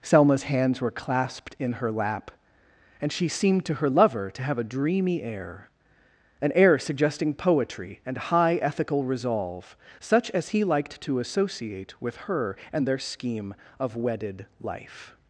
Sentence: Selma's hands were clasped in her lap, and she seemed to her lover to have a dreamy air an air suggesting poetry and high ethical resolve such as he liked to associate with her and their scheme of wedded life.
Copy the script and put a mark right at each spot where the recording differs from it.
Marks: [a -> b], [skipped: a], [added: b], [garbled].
Selma's hands were clasped in her lap, and she seemed to her lover to have a dreamy air an air suggesting poetry and high ethical resolve such as he liked to associate with her and their scheme of wedded life.